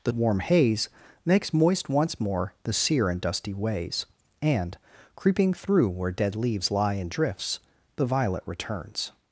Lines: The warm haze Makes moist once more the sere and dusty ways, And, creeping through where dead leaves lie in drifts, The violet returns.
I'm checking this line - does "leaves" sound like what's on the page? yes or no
yes